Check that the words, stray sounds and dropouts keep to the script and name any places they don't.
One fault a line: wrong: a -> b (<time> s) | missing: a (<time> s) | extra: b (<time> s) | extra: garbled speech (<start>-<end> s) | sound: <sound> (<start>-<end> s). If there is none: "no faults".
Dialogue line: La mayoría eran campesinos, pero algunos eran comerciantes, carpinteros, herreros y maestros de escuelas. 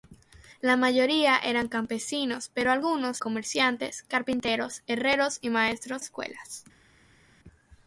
missing: eran (3.2 s)
missing: de (6.0 s)